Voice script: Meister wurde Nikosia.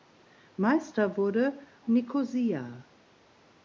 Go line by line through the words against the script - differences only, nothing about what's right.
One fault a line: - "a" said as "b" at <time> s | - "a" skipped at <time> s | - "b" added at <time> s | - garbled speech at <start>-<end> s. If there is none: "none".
none